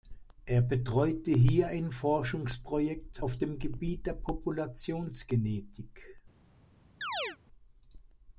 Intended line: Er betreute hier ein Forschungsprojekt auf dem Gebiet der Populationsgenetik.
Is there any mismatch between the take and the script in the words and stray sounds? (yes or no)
yes